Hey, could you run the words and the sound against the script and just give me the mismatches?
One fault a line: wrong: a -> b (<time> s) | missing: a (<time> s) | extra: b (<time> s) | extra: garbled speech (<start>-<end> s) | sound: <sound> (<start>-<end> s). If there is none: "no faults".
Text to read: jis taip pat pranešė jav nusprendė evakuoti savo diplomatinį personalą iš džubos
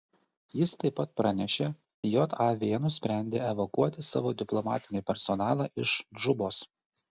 no faults